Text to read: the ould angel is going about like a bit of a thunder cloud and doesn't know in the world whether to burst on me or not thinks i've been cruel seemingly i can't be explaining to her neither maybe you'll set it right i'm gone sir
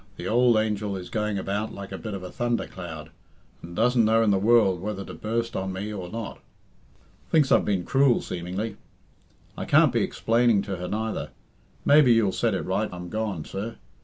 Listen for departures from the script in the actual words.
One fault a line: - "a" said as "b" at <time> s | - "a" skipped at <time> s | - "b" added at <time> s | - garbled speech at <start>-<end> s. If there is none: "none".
none